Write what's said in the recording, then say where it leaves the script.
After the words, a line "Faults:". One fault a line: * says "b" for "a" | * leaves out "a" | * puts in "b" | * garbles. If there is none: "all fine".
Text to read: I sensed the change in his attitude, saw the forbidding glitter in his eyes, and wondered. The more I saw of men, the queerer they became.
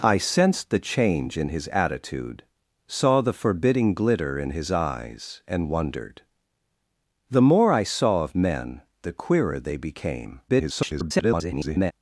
I sensed the change in his attitude, saw the forbidding glitter in his eyes, and wondered. The more I saw of men, the queerer they became. [garbled]
Faults:
* garbles